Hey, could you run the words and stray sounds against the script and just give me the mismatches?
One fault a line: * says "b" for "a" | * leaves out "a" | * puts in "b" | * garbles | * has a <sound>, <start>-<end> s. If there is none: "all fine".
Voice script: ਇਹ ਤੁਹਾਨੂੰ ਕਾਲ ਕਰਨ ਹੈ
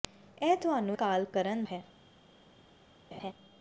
* has a laugh, 3.1-3.3 s